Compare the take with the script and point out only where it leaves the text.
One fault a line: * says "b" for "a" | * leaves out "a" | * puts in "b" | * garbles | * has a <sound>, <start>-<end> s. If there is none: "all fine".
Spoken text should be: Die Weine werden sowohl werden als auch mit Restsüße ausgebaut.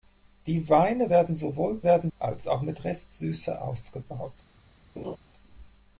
* has a laugh, 5.0-5.2 s